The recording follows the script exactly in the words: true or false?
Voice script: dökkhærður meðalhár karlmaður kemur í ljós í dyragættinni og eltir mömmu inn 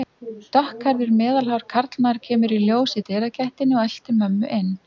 true